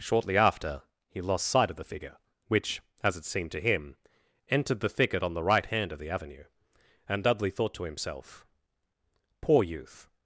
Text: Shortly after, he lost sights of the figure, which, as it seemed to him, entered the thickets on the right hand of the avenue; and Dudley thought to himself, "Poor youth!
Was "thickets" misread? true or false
true